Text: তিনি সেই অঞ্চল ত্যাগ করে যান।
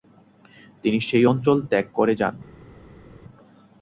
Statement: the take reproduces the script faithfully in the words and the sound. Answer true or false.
true